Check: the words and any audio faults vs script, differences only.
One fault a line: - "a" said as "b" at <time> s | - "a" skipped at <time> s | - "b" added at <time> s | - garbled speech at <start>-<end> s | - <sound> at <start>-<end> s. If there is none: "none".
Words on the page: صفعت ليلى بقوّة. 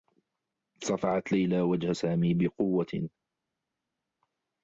- "وجه سامي" added at 1.6 s